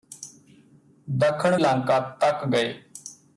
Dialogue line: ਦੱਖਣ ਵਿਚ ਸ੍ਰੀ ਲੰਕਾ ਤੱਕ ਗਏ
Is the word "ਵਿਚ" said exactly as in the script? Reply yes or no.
no